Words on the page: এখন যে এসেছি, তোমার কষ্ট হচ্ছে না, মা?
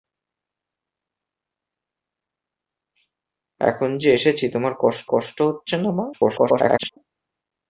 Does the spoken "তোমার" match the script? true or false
true